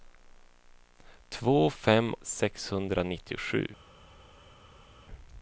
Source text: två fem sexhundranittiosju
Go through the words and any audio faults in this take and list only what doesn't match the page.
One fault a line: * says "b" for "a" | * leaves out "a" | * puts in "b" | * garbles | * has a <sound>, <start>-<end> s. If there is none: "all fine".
all fine